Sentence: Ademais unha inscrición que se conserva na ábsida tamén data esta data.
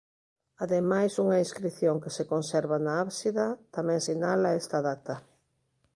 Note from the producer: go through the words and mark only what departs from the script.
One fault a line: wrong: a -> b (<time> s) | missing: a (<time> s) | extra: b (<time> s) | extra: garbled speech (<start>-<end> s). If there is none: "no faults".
wrong: data -> sinala (4.1 s)